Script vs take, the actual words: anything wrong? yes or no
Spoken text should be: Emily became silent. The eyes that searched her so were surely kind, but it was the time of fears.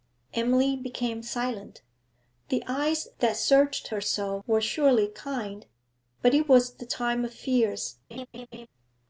no